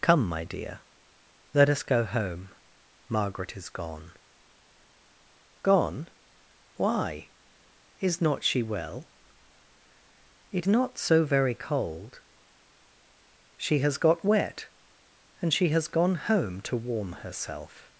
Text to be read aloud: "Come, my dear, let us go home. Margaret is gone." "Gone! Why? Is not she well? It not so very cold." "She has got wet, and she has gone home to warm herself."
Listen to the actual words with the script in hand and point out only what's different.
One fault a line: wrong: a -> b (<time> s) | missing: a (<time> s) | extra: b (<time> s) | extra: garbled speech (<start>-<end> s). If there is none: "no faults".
no faults